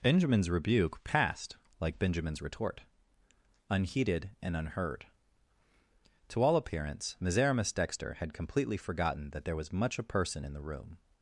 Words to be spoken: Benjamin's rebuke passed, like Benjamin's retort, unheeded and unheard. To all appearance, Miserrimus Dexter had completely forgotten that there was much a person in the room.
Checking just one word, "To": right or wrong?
right